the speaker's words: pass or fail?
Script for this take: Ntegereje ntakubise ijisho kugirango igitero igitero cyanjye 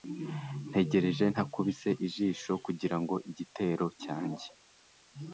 fail